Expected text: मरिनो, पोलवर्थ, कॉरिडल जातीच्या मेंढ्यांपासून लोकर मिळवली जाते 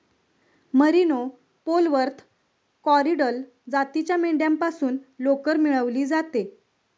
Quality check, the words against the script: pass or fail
pass